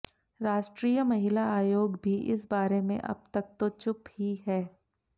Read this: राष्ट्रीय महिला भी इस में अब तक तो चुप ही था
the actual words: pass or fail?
fail